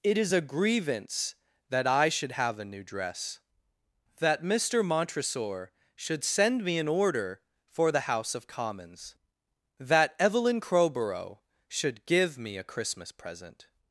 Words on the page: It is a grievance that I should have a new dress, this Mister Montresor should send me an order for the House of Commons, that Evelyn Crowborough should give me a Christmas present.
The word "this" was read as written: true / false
false